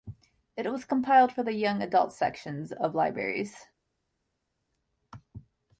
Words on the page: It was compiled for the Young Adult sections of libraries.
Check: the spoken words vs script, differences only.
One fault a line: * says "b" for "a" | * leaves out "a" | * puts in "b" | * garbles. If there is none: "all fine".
all fine